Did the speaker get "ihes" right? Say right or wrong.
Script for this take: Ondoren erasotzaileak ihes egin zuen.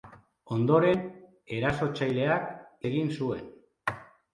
wrong